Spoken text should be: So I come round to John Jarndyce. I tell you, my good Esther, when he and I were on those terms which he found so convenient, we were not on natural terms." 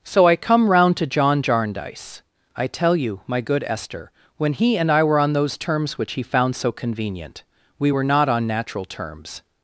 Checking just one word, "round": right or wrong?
right